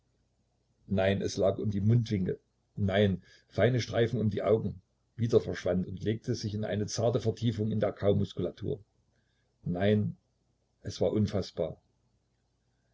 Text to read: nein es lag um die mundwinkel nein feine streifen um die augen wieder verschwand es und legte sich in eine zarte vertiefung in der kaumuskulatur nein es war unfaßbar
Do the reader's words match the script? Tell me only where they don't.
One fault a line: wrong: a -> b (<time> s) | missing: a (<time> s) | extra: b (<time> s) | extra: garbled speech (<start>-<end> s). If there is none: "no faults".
missing: es (5.8 s)